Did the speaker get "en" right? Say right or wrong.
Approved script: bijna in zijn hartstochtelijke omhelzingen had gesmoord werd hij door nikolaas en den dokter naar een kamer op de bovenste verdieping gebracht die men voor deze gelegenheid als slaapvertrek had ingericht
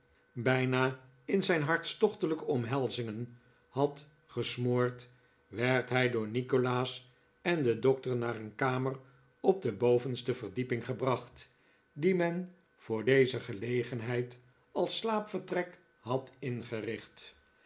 right